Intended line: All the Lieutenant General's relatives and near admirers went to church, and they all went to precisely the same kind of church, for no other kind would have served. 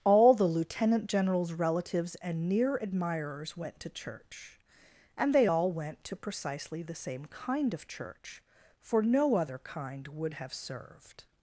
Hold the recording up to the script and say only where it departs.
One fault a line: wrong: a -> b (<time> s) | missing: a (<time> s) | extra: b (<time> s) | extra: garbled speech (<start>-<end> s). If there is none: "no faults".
no faults